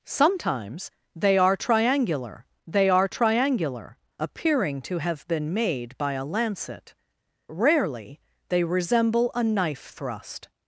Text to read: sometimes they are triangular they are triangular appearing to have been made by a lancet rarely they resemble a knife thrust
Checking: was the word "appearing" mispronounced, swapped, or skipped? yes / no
no